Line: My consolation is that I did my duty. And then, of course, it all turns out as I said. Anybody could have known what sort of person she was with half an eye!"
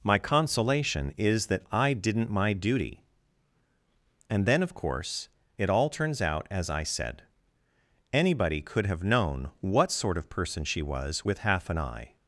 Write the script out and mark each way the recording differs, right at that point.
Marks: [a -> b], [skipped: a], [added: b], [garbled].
My consolation is that I [did -> didn't] my duty. And then, of course, it all turns out as I said. Anybody could have known what sort of person she was with half an eye!"